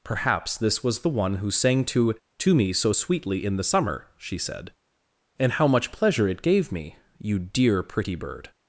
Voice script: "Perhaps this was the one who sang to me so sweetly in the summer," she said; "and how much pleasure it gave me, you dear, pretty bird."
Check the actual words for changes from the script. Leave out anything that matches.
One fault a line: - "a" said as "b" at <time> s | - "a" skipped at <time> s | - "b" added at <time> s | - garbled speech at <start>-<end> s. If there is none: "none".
- "to" added at 2.4 s